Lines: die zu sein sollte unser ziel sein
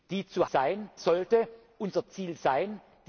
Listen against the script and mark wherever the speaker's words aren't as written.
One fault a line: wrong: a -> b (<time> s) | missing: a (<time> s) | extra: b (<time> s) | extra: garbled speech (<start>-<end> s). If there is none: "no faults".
no faults